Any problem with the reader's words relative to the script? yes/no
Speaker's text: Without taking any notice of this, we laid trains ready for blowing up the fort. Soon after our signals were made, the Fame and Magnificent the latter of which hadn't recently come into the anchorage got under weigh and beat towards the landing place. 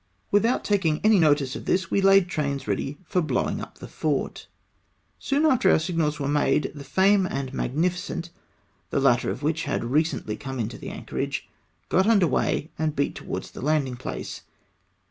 yes